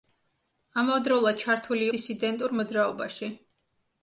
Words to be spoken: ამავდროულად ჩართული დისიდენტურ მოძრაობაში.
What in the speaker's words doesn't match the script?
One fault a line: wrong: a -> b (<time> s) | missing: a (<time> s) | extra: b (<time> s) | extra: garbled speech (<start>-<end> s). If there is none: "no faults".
no faults